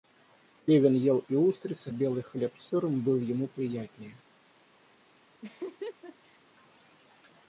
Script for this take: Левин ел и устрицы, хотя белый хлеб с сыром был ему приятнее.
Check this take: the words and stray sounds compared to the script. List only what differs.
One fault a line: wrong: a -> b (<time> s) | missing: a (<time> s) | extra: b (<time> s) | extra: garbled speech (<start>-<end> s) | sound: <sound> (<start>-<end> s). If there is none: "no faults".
missing: хотя (1.9 s)
sound: laugh (5.4-6.4 s)